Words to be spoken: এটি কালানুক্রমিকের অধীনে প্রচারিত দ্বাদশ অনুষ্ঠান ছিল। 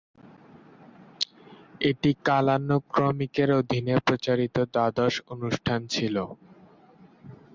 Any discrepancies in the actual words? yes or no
no